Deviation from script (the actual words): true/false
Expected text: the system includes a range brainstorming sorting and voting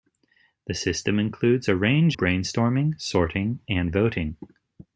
false